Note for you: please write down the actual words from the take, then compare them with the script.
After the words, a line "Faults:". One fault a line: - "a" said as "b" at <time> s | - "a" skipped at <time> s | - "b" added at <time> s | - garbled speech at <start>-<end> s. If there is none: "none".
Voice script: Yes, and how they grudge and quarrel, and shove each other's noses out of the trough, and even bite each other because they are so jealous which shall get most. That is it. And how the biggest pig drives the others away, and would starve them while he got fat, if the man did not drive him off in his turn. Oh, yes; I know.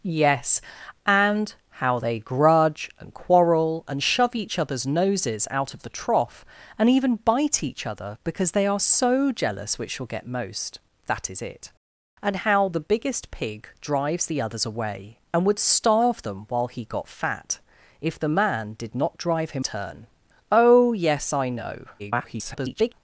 Yes, and how they grudge and quarrel, and shove each other's noses out of the trough, and even bite each other because they are so jealous which shall get most. That is it. And how the biggest pig drives the others away, and would starve them while he got fat, if the man did not drive him turn. Oh, yes; I know. [garbled]
Faults:
- "off in his" skipped at 19.6 s
- garbled speech at 22.0-22.9 s